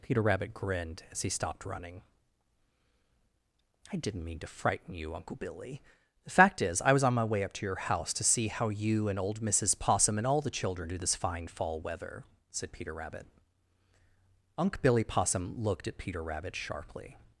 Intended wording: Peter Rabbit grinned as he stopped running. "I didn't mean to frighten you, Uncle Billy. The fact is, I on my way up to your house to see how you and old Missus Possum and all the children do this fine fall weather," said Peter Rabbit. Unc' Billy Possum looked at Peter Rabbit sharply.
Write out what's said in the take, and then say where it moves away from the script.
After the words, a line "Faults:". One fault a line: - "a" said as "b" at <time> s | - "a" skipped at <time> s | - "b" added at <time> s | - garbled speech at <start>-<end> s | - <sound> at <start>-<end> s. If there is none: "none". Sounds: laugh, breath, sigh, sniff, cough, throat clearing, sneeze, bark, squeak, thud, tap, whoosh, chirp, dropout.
Peter Rabbit grinned as he stopped running. "I didn't mean to frighten you, Uncle Billy. The fact is, I was on my way up to your house to see how you and old Missus Possum and all the children do this fine fall weather," said Peter Rabbit. Unc' Billy Possum looked at Peter Rabbit sharply.
Faults:
- "was" added at 6.9 s